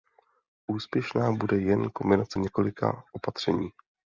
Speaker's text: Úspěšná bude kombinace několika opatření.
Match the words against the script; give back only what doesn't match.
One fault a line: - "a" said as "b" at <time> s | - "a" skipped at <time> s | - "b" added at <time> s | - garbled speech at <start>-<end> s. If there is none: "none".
- "jen" added at 1.6 s